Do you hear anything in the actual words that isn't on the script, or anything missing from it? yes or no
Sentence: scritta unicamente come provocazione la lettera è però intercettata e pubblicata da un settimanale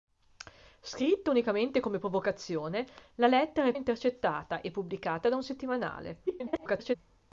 yes